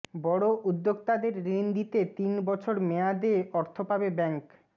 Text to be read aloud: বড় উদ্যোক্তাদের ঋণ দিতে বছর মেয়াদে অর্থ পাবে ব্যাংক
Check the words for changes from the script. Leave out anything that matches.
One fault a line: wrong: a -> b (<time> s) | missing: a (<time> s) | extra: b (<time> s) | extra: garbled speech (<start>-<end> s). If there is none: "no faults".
extra: তিন (2.2 s)